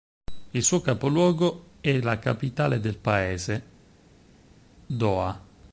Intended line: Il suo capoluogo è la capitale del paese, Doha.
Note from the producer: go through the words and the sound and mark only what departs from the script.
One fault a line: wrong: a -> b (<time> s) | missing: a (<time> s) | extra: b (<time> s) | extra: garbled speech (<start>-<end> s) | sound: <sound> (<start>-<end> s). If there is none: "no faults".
no faults